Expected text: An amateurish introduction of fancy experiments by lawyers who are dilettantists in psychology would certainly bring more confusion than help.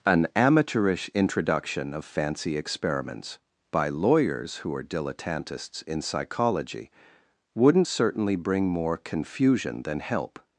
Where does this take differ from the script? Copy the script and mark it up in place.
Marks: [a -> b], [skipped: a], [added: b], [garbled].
An amateurish introduction of fancy experiments by lawyers who are dilettantists in psychology [would -> wouldn't] certainly bring more confusion than help.